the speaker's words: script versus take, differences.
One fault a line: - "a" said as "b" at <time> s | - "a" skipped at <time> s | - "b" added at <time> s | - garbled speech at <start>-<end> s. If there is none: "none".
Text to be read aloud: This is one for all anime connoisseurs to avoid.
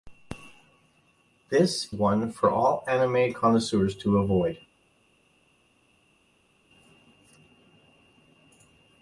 - "is" skipped at 1.9 s